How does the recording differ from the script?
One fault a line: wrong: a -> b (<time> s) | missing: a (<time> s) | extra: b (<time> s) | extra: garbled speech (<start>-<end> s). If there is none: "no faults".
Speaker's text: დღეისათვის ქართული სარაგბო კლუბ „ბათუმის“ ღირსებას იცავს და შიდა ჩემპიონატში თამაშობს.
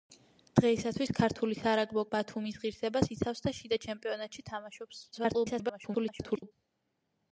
missing: კლუბ (2.0 s)
extra: garbled speech (5.1-6.5 s)